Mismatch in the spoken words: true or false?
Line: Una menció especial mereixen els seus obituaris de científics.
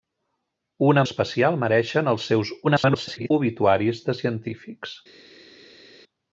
true